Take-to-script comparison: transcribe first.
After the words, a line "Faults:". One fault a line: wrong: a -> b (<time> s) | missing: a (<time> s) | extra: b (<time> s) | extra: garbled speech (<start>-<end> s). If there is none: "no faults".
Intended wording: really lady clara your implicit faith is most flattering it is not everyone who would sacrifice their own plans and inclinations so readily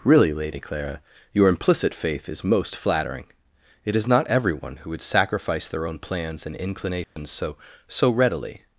really lady clara your implicit faith is most flattering it is not everyone who would sacrifice their own plans and inclinations so so readily
Faults:
extra: so (7.9 s)